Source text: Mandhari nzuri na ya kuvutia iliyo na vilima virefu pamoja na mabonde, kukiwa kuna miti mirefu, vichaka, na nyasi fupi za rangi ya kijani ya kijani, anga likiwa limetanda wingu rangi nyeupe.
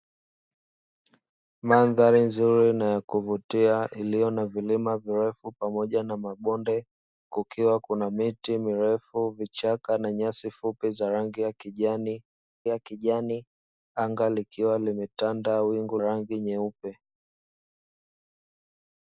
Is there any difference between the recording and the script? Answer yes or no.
no